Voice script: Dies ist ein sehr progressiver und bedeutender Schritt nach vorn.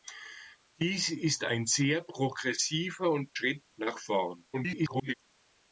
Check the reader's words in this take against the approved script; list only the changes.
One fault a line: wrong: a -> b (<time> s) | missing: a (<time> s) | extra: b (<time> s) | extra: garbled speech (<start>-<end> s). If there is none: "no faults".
missing: bedeutender (3.3 s)
extra: garbled speech (4.5-5.1 s)